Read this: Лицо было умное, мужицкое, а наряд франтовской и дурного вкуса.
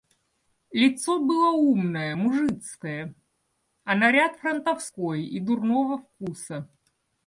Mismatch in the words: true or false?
false